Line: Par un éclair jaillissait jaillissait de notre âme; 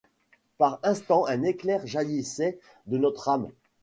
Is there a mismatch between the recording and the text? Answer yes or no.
yes